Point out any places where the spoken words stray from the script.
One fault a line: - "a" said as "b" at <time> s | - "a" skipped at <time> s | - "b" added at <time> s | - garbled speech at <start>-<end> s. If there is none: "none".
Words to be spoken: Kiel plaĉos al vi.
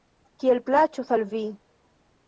none